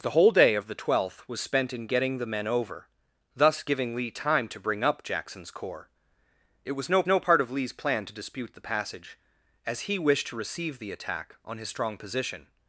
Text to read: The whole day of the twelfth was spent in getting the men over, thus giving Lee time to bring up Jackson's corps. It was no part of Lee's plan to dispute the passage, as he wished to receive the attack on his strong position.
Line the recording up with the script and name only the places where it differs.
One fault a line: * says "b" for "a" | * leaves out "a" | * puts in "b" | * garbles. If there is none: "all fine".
* puts in "no"